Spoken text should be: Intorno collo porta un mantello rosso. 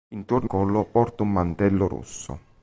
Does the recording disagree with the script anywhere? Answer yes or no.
no